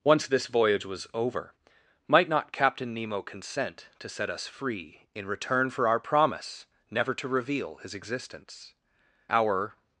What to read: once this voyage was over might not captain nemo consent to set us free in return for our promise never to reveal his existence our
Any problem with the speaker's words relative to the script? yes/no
no